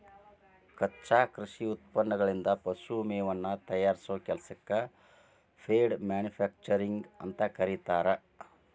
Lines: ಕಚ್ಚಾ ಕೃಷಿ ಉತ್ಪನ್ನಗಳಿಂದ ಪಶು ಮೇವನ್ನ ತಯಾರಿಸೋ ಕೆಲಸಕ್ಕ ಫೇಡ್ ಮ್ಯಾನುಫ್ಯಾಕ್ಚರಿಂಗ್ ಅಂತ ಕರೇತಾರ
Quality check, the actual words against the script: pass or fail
pass